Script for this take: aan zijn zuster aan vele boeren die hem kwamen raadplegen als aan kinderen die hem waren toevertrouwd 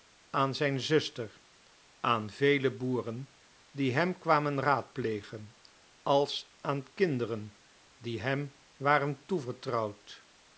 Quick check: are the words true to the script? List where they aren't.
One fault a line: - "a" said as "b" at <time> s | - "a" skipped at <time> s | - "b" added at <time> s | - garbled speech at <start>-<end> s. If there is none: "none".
none